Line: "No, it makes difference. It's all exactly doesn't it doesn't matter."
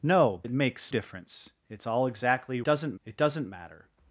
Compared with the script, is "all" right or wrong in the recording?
right